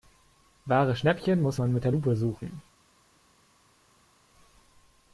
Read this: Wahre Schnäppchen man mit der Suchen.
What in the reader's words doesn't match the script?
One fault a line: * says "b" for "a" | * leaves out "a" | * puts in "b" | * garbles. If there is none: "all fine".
* puts in "muss"
* puts in "Lupe"